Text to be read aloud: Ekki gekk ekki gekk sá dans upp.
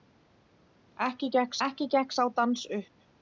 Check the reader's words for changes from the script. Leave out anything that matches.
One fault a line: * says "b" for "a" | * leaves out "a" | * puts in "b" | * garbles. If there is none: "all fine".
all fine